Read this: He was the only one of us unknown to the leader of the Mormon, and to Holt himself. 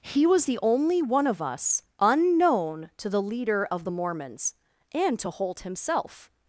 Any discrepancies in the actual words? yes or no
yes